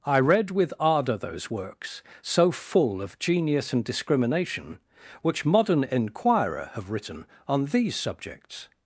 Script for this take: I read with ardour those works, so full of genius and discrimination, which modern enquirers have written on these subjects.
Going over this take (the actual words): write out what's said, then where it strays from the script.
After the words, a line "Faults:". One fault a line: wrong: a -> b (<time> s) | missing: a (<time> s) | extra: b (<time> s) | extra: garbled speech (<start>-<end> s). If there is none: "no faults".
I read with ardour those works, so full of genius and discrimination, which modern enquirer have written on these subjects.
Faults:
wrong: enquirers -> enquirer (5.8 s)